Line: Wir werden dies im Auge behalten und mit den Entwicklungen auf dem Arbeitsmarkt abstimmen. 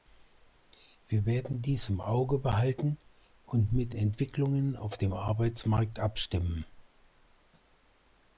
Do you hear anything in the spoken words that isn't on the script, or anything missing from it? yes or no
yes